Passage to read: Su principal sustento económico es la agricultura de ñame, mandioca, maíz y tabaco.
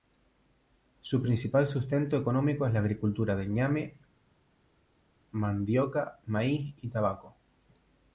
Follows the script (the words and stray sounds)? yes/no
yes